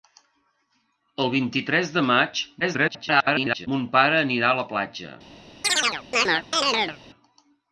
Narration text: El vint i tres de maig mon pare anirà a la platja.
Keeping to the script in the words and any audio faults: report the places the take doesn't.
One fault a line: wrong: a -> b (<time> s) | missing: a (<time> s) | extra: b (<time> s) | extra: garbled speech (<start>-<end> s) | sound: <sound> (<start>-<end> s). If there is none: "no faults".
extra: garbled speech (2.6-3.7 s)
sound: chirp (5.6-7.0 s)